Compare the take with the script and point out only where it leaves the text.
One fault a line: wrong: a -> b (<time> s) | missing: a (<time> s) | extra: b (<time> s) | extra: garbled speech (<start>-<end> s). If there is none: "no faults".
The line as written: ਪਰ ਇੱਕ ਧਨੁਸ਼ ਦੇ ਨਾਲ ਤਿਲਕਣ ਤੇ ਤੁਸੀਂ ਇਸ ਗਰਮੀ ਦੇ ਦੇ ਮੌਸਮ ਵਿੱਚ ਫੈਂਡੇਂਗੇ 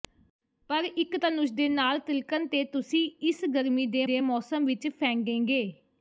no faults